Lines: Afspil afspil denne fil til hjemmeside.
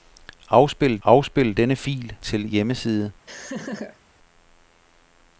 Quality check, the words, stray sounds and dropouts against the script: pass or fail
fail